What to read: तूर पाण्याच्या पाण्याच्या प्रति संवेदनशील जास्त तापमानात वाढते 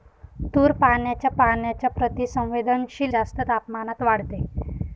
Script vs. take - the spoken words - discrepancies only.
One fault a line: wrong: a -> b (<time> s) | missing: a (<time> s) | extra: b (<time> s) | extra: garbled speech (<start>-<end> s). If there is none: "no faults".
no faults